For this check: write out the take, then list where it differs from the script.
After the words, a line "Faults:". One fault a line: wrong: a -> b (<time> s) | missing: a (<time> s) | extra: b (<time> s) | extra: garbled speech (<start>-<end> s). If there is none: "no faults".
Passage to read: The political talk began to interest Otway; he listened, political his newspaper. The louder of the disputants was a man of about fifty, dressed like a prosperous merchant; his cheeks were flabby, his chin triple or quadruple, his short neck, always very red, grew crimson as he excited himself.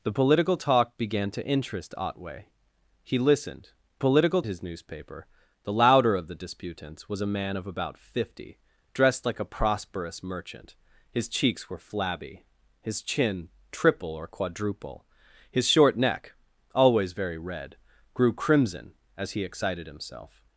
The political talk began to interest Otway; he listened, political his newspaper. The louder of the disputants was a man of about fifty, dressed like a prosperous merchant; his cheeks were flabby, his chin triple or quadruple, his short neck, always very red, grew crimson as he excited himself.
Faults:
no faults